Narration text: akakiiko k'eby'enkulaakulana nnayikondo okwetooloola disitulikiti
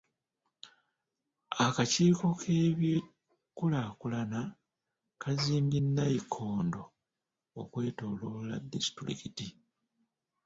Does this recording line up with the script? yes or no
no